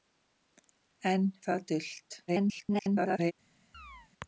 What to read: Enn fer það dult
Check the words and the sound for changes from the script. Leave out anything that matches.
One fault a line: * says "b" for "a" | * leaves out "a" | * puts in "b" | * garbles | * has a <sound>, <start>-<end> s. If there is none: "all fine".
* leaves out "fer"
* garbles
* has a chirp, 3.7-4.1 s